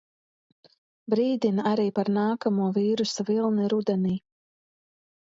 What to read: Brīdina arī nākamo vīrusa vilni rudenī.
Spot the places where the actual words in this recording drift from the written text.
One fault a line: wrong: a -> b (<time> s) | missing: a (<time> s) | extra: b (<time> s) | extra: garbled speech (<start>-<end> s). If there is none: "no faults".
extra: par (2.0 s)